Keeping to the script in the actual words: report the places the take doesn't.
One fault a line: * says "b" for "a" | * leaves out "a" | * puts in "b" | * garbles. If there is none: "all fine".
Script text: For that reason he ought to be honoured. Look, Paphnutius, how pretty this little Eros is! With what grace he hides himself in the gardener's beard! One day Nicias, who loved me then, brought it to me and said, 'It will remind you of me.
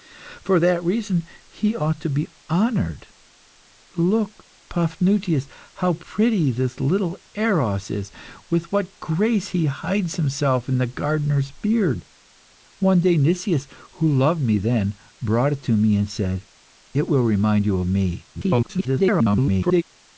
* garbles